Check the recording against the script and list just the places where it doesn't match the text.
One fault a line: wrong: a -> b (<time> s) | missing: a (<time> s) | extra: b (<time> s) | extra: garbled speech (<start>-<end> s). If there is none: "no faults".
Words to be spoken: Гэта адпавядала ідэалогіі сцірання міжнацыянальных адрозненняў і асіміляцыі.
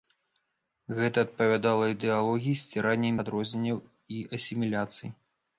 missing: міжнацыянальных (3.1 s)